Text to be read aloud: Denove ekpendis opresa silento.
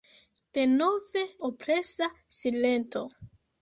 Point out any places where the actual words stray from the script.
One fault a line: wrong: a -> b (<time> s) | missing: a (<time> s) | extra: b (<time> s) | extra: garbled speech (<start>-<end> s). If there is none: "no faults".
missing: ekpendis (1.2 s)